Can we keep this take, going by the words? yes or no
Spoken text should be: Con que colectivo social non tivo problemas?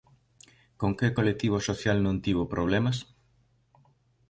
yes